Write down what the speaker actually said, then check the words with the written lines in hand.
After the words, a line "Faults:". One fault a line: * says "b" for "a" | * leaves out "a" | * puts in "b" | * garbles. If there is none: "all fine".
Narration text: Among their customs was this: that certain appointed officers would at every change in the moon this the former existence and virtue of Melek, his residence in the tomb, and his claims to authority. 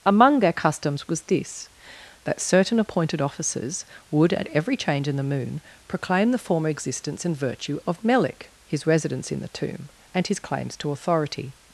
Among their customs was this: that certain appointed officers would at every change in the moon proclaim the former existence and virtue of Melek, his residence in the tomb, and his claims to authority.
Faults:
* says "proclaim" for "this"